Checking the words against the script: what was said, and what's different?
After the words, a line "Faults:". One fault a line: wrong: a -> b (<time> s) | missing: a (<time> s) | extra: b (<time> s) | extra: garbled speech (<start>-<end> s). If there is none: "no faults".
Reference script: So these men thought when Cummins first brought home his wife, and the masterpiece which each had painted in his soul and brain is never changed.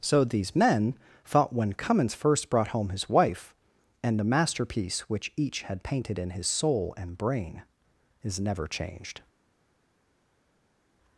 So these men thought when Cummins first brought home his wife, and the masterpiece which each had painted in his soul and brain is never changed.
Faults:
no faults